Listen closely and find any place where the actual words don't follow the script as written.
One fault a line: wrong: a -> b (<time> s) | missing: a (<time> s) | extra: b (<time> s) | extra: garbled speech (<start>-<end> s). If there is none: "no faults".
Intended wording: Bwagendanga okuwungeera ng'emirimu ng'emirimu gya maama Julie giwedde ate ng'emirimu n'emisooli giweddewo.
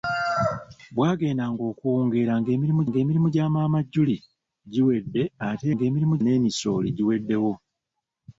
no faults